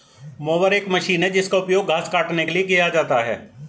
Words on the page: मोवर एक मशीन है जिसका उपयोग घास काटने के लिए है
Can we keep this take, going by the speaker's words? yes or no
no